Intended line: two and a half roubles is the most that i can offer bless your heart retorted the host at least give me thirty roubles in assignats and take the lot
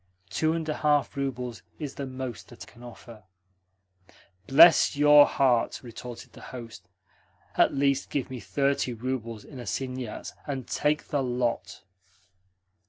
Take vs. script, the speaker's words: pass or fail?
fail